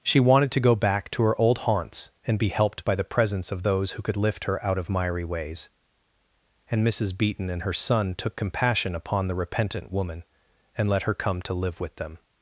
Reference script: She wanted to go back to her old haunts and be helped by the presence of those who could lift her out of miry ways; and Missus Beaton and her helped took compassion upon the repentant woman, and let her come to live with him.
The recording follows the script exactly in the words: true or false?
false